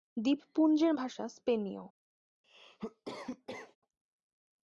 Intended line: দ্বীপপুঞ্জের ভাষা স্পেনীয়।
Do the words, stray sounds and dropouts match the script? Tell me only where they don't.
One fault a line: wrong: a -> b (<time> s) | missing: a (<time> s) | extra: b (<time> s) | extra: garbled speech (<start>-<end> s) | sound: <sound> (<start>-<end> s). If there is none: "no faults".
sound: cough (2.4-3.8 s)